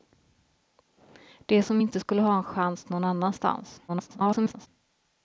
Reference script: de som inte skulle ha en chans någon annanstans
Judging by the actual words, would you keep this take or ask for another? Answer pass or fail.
fail